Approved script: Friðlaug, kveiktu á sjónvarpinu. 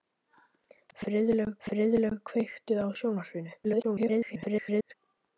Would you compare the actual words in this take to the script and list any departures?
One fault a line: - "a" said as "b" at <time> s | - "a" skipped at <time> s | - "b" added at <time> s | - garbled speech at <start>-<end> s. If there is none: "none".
- "friðlaug" added at 1.7 s
- garbled speech at 3.6-4.9 s